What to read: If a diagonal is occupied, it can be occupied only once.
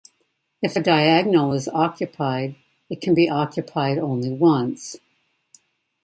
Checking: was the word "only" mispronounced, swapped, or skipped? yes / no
no